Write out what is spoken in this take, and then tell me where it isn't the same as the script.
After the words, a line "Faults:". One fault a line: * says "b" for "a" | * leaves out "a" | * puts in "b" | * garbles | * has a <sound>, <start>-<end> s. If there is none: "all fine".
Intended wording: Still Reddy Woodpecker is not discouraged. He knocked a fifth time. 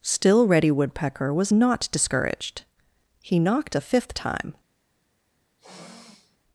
Still Reddy Woodpecker was not discouraged. He knocked a fifth time.
Faults:
* says "was" for "is"
* has a sniff, 5.6-6.4 s